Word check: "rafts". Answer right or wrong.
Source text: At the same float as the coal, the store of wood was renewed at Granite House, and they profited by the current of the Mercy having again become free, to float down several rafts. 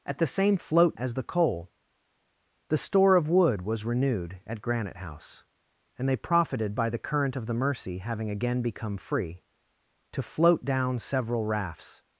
right